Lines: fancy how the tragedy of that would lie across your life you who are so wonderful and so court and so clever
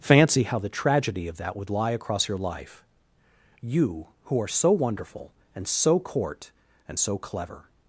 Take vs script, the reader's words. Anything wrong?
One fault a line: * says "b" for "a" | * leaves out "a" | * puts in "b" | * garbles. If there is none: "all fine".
all fine